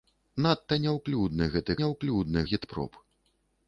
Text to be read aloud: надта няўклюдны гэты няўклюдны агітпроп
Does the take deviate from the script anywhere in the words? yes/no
no